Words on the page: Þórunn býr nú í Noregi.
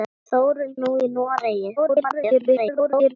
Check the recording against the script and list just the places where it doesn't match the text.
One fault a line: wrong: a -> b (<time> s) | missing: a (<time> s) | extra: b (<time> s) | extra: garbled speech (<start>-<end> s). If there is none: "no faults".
missing: býr (0.7 s)
extra: garbled speech (1.8-3.2 s)